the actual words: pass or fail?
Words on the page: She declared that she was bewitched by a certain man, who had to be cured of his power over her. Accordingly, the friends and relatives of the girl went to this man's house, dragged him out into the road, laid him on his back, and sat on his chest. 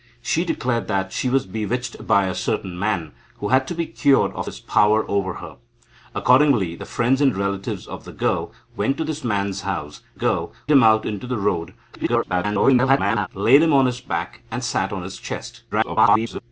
fail